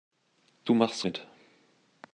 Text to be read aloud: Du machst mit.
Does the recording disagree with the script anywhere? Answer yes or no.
no